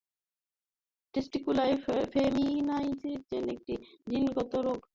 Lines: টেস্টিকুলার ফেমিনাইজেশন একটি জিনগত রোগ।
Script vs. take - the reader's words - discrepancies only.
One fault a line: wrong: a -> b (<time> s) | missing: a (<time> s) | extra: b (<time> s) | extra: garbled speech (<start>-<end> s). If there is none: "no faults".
no faults